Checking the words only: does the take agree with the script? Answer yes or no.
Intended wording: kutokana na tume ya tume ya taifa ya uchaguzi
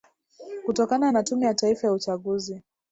no